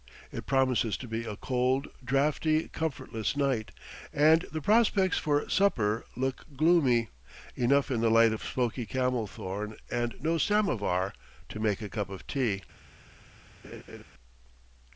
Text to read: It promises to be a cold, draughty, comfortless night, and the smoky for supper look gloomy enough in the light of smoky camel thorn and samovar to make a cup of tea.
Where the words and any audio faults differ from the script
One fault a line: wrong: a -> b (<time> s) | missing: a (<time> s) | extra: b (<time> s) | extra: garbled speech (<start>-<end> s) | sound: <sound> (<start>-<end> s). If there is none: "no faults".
wrong: smoky -> prospects (4.6 s)
extra: no (10.2 s)
sound: laugh (13.6-14.0 s)